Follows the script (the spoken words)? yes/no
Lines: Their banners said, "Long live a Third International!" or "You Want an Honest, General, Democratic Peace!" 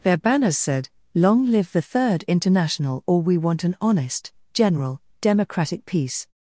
no